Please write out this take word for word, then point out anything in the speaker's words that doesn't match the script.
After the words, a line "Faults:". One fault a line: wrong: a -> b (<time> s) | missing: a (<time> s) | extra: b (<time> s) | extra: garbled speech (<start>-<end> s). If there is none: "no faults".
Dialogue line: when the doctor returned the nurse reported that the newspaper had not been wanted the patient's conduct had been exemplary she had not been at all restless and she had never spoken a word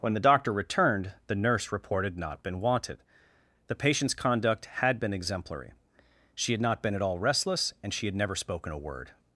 when the doctor returned the nurse reported not been wanted the patient's conduct had been exemplary she had not been at all restless and she had never spoken a word
Faults:
missing: that the newspaper had (2.2 s)